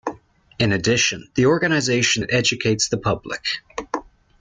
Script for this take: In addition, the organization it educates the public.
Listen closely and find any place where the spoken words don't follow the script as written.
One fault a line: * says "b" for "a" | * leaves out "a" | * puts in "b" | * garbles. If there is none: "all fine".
all fine